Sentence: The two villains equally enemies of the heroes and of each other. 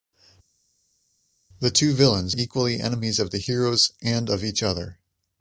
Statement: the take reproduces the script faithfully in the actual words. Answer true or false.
true